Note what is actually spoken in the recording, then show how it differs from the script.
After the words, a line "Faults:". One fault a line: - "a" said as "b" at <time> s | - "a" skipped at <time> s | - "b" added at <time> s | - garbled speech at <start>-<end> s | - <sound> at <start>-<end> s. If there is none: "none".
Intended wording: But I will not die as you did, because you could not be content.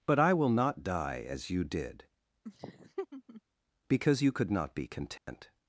But I will not die as you did, because you could not be content.
Faults:
- laugh at 2.4-3.4 s
- dropout at 5.2-5.3 s